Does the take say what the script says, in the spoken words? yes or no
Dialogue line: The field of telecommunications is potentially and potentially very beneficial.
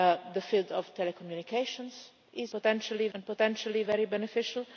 yes